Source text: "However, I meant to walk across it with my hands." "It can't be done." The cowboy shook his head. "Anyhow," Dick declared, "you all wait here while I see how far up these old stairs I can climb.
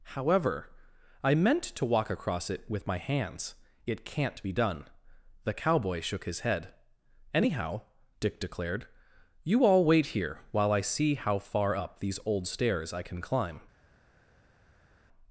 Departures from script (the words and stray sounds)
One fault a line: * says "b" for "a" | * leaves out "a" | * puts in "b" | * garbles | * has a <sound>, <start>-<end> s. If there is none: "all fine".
all fine